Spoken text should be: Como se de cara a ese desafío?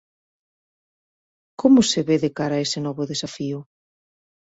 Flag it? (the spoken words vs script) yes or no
yes